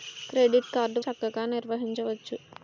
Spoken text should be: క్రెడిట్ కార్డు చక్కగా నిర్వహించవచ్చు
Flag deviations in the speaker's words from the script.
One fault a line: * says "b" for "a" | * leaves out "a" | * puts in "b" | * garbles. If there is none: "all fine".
all fine